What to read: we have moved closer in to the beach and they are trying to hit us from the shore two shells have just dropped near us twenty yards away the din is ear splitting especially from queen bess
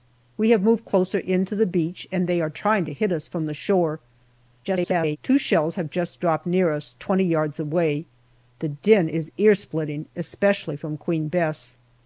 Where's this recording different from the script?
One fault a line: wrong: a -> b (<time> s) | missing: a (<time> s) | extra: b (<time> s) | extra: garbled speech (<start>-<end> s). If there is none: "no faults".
extra: garbled speech (4.6-5.2 s)